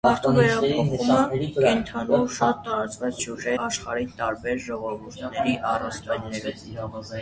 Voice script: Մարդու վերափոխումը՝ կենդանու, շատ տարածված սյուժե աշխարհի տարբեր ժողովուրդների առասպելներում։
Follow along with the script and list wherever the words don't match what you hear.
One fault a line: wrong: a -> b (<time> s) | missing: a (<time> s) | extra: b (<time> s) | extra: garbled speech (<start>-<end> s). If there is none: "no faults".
no faults